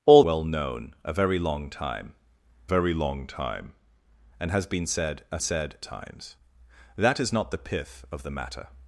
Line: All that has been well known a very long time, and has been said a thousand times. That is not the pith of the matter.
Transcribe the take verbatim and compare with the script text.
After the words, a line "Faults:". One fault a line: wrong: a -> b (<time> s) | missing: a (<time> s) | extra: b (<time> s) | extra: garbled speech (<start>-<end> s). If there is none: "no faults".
All well known a very long time very long time, and has been said a said times. That is not the pith of the matter.
Faults:
missing: that has been (0.2 s)
extra: very long time (2.6 s)
wrong: thousand -> said (5.4 s)